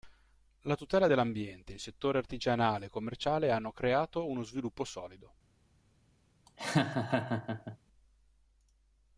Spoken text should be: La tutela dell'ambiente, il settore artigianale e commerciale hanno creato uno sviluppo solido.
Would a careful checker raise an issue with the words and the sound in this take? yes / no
yes